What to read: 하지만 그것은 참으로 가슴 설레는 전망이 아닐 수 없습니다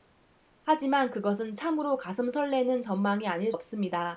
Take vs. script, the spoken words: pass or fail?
fail